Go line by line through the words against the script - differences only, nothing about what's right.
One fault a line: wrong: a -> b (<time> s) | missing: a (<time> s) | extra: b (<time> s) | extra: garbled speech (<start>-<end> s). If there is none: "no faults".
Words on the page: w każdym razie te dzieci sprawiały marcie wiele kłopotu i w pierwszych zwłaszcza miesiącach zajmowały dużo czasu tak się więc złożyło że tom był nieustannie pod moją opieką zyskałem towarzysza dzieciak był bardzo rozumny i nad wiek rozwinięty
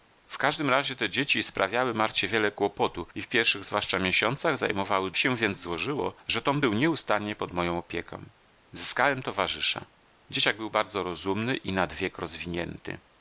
missing: dużo czasu tak (5.1 s)